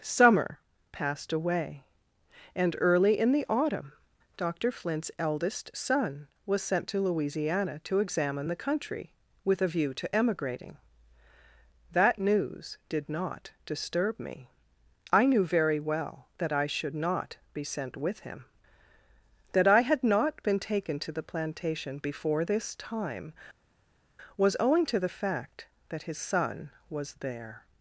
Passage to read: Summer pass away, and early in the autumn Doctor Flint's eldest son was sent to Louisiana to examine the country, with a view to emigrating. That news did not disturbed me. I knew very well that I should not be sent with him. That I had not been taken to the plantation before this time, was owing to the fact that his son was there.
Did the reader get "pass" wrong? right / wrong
wrong